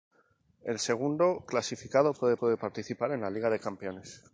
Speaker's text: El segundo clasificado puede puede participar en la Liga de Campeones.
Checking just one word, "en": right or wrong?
right